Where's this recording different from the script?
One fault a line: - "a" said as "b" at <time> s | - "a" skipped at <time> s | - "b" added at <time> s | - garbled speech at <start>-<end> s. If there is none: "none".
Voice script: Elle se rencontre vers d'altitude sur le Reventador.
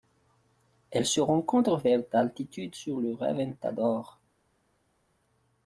none